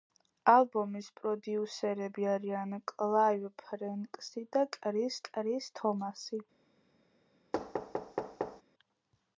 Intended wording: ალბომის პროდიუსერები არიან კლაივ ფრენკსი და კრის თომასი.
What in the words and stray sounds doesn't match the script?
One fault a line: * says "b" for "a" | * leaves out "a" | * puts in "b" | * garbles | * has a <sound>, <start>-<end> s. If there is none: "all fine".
* puts in "კრის"
* has a thud, 7.5-8.6 s